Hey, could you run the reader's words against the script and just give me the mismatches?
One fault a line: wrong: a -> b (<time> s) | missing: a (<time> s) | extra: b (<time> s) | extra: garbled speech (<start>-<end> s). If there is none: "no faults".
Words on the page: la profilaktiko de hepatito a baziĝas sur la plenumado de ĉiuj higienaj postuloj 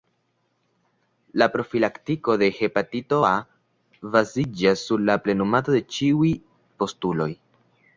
missing: higienaj (6.3 s)